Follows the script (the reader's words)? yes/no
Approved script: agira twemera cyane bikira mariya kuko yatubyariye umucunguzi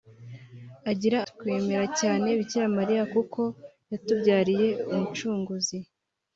yes